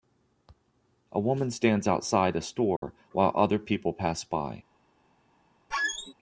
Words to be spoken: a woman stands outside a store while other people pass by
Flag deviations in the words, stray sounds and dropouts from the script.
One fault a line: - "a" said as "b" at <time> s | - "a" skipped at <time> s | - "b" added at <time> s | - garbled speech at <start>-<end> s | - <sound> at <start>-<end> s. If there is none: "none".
- dropout at 2.8-2.8 s
- squeak at 5.7-6.1 s